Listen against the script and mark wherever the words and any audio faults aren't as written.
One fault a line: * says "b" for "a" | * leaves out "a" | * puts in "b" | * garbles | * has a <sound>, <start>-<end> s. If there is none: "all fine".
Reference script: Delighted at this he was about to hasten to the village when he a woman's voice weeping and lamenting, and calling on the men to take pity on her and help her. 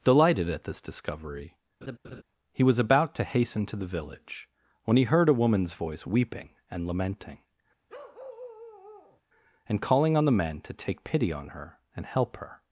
* puts in "discovery"
* has a laugh, 1.8-2.2 s
* puts in "heard"
* has a bark, 7.9-9.2 s